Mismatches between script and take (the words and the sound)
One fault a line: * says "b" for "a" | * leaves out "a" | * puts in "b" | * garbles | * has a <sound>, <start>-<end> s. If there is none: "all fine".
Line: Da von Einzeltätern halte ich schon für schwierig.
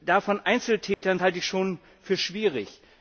* has a dropout, 0.9-1.0 s